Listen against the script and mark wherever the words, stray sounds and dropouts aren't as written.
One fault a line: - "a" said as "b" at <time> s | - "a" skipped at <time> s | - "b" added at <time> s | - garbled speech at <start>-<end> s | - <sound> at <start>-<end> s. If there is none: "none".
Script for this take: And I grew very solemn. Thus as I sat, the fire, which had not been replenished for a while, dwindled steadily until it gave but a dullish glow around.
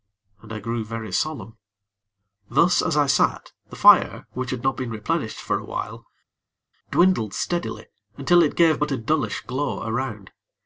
none